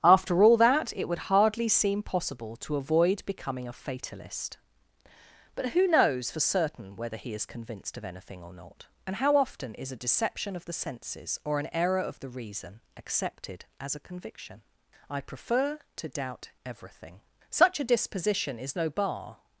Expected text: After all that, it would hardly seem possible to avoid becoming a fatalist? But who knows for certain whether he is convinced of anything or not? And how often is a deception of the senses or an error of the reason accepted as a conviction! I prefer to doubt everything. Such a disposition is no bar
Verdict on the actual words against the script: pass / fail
pass